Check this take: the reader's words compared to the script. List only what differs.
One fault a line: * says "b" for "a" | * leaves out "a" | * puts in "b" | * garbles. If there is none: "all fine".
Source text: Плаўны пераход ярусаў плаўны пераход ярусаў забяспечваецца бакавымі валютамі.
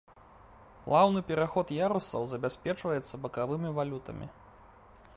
* leaves out "плаўны пераход ярусаў"